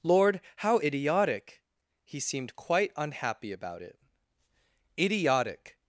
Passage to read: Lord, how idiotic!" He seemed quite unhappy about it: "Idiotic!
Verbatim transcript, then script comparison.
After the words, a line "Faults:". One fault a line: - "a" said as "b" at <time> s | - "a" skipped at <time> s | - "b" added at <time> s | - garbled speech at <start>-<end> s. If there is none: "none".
Lord, how idiotic!" He seemed quite unhappy about it: "Idiotic!
Faults:
none